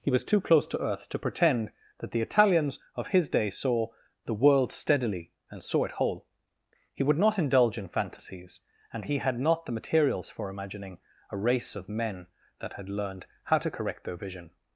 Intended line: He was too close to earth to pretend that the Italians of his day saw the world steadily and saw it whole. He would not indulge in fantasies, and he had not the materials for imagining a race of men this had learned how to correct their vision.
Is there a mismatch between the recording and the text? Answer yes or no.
yes